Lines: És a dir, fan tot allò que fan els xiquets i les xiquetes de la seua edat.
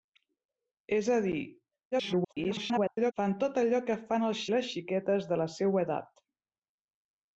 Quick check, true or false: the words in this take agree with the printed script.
false